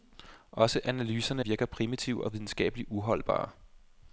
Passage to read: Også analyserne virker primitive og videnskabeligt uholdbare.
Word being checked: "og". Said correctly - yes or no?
yes